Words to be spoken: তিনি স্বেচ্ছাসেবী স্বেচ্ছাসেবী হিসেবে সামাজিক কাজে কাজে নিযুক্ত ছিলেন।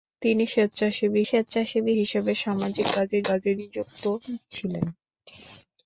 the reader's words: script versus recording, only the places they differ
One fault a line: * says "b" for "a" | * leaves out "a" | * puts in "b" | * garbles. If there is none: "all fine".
all fine